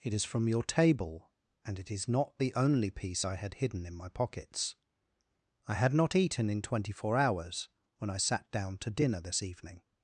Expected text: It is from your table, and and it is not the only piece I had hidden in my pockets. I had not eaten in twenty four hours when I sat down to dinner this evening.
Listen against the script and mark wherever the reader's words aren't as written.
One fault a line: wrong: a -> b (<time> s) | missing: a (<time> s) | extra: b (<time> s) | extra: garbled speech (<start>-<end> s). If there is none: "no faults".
missing: and (1.8 s)